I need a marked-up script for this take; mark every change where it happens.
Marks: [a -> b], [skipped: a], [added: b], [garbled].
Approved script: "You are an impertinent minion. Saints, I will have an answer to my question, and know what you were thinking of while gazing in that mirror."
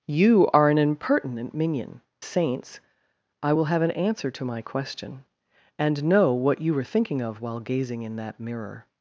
"You are an impertinent minion. Saints, I will have an answer to my question, and know what you were thinking of while gazing in that mirror."